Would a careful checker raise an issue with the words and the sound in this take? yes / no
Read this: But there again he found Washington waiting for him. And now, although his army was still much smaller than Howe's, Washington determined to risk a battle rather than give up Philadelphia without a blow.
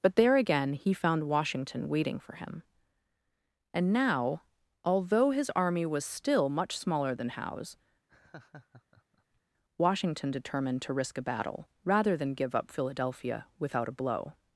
yes